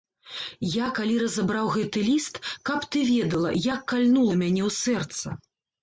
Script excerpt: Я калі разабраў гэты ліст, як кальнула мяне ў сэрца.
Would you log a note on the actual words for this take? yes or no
yes